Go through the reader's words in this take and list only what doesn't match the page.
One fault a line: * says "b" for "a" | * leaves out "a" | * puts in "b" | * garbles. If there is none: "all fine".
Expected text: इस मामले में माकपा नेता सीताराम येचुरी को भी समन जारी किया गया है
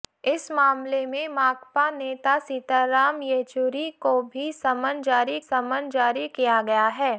* puts in "समन जारी"